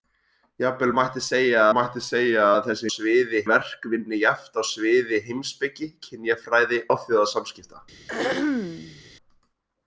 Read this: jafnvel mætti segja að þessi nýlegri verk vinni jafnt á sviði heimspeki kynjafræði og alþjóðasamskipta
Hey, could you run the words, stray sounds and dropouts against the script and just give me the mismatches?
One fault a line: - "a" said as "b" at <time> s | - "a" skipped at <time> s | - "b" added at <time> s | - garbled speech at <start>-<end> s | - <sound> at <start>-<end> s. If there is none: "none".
- "mætti segja" added at 1.8 s
- "nýlegri" said as "sviði" at 2.9 s
- "og" skipped at 6.8 s
- throat clearing at 8.1-9.0 s